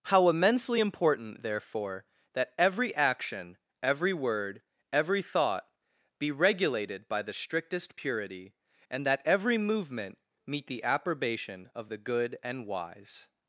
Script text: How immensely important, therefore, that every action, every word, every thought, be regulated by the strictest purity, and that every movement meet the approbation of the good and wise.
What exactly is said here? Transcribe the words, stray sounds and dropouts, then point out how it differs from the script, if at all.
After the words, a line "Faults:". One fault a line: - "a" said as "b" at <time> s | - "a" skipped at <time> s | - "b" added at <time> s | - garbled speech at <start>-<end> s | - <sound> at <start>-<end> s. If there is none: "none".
How immensely important, therefore, that every action, every word, every thought, be regulated by the strictest purity, and that every movement meet the approbation of the good and wise.
Faults:
none